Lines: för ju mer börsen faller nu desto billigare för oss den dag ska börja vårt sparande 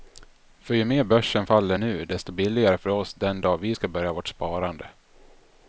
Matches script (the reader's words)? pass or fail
fail